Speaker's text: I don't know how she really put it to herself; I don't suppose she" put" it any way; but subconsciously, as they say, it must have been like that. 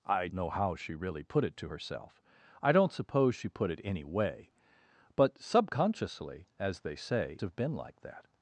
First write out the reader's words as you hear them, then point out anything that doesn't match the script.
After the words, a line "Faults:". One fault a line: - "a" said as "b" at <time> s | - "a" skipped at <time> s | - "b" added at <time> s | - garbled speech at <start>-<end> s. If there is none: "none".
I know how she really put it to herself; I don't suppose she" put" it any way; but subconsciously, as they say, have been like that.
Faults:
- "don't" skipped at 0.3 s
- "it must" skipped at 7.4 s